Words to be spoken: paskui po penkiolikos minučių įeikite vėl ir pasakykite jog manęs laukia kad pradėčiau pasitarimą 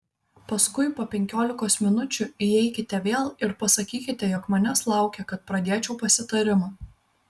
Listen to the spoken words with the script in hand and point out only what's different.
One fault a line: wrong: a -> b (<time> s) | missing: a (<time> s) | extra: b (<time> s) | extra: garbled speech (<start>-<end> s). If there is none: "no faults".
no faults